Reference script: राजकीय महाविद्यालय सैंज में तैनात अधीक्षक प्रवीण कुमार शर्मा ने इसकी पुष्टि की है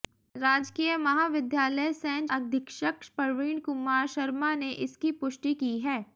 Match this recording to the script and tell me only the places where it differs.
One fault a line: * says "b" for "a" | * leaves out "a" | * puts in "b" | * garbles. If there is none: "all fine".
* leaves out "में तैनात"